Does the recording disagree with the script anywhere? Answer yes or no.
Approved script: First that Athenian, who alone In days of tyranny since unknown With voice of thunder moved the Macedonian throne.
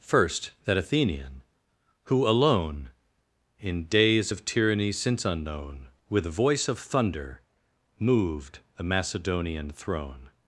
no